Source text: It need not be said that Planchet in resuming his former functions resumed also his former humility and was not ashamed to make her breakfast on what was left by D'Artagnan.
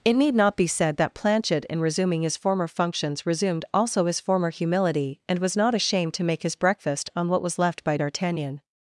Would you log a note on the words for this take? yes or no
yes